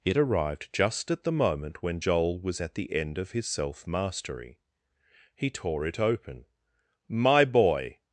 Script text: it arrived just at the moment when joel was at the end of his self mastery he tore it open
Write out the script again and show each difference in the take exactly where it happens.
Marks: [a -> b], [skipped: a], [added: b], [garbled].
it arrived just at the moment when joel was at the end of his self mastery he tore it open [added: my boy]